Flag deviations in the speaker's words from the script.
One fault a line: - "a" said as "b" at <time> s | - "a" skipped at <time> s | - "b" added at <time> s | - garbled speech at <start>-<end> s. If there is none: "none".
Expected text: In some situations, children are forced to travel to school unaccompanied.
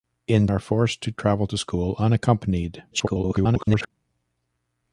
- "some situations children" skipped at 0.5 s
- garbled speech at 2.9-3.9 s